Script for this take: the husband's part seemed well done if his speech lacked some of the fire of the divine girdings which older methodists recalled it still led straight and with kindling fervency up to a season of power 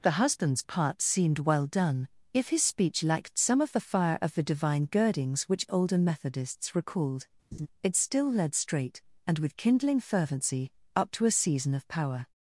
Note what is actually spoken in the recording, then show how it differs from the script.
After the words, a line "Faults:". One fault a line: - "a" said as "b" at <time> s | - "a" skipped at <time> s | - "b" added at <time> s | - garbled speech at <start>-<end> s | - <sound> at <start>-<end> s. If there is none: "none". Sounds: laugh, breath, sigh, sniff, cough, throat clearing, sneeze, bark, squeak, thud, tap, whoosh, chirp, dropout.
the husband's part seemed well done if his speech lacked some of the fire of the divine girdings which older methodists recalled it still led straight and with kindling fervency up to a season of power
Faults:
- laugh at 7.5-7.7 s